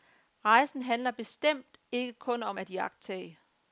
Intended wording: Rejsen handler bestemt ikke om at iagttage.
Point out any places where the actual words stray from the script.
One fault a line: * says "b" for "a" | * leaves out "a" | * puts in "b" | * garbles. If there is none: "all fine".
* puts in "kun"